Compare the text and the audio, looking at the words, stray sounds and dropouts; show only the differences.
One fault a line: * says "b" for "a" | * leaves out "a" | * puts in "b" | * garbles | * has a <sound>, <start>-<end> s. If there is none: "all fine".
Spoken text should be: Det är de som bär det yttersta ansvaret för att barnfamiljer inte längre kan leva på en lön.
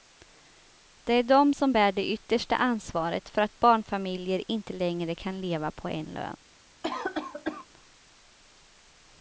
* has a cough, 6.8-7.7 s